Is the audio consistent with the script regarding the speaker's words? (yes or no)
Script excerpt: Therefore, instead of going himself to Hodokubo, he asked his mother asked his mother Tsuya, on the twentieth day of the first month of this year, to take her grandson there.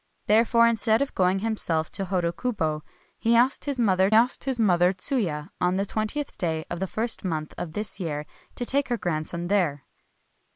yes